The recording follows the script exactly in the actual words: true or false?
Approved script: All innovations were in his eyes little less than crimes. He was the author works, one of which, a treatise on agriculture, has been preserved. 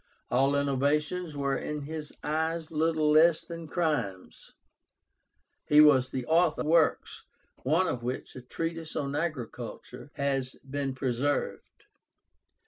true